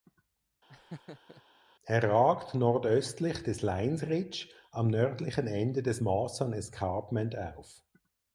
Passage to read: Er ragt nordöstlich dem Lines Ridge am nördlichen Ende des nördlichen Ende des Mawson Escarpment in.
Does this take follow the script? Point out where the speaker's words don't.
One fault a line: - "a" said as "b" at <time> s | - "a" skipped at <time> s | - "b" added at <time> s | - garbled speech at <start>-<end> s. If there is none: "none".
- "dem" said as "des" at 3.4 s
- "nördlichen Ende des" skipped at 6.0 s
- "in" said as "auf" at 7.4 s